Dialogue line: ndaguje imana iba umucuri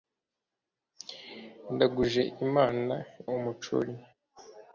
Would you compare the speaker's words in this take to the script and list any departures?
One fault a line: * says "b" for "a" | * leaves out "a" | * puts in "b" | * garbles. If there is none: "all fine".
* leaves out "iba"